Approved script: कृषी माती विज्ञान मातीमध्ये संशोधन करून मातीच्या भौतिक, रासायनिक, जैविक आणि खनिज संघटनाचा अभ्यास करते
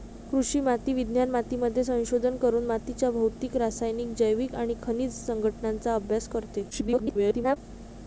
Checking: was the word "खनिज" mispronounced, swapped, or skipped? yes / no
no